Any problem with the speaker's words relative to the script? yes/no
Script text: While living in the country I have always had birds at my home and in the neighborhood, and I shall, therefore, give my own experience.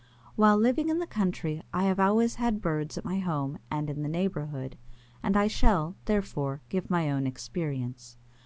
no